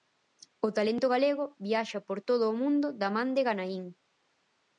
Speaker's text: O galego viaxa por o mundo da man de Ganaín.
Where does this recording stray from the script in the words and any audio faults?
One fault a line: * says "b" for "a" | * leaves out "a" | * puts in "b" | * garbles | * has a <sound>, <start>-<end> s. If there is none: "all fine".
* puts in "talento"
* puts in "todo"